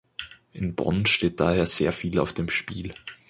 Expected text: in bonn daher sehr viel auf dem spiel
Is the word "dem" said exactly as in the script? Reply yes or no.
yes